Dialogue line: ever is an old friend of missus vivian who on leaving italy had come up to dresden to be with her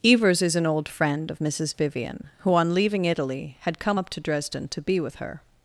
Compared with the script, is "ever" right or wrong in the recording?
wrong